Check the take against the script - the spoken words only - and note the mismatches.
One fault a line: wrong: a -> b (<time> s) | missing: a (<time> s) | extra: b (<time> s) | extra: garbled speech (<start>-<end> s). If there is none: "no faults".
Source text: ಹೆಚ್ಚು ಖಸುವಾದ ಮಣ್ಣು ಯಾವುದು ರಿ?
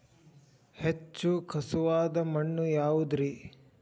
no faults